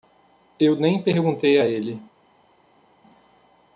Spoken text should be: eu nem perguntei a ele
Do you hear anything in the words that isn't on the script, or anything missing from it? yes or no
no